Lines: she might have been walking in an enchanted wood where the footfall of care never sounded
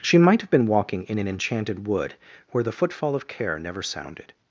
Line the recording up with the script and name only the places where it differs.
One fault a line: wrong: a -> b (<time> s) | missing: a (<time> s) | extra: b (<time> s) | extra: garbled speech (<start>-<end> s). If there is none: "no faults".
no faults